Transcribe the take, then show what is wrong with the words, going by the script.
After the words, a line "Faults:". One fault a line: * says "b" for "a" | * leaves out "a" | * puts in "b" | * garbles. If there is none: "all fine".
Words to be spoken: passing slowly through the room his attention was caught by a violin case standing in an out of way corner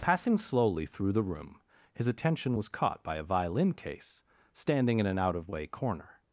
passing slowly through the room his attention was caught by a violin case standing in an out of way corner
Faults:
all fine